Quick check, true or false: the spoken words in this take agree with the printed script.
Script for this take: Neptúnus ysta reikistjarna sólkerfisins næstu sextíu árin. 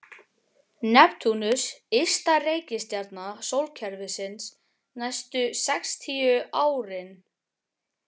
true